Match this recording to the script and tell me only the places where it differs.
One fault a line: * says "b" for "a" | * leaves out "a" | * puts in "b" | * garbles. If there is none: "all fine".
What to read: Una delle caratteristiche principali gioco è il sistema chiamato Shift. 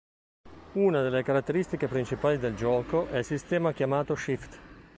* puts in "del"